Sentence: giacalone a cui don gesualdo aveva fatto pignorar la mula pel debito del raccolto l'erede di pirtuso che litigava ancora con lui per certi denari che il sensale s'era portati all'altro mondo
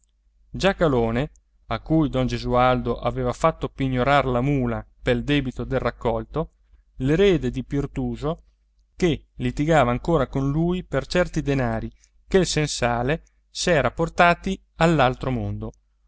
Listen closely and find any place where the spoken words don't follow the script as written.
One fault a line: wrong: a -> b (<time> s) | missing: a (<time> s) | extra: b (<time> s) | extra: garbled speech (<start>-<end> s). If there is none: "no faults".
no faults